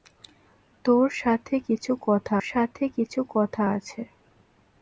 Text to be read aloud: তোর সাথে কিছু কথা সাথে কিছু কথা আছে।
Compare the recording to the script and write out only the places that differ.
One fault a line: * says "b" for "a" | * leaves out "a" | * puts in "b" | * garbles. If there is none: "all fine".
all fine